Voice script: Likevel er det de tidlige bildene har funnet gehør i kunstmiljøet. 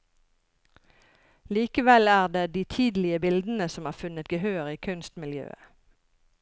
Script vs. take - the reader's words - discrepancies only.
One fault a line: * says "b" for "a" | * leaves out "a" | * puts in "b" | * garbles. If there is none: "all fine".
* puts in "som"